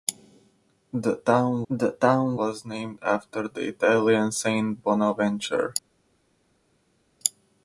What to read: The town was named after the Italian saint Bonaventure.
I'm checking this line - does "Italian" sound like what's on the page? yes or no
yes